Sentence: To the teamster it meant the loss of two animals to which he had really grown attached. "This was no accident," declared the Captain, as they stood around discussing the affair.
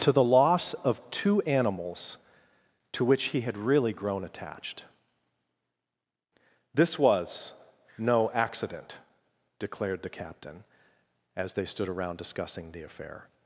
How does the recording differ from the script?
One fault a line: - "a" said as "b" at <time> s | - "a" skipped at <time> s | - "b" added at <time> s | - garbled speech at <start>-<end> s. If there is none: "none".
- "teamster it meant the" skipped at 0.2 s